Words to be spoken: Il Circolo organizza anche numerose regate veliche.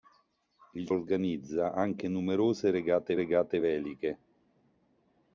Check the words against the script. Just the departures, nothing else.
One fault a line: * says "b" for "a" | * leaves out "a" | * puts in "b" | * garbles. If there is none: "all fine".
* leaves out "Circolo"
* puts in "regate"